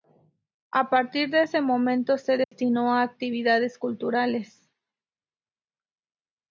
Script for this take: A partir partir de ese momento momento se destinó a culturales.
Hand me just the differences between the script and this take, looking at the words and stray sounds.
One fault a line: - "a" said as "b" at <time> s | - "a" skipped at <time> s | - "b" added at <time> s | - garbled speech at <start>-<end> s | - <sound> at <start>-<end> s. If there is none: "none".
- "partir" skipped at 1.3 s
- "momento" skipped at 2.2 s
- dropout at 2.4-2.5 s
- "actividades" added at 3.0 s